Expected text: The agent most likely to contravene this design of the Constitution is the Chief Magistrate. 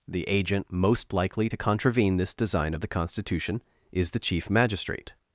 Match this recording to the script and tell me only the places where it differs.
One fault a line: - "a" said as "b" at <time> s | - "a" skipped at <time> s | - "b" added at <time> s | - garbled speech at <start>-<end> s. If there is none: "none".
none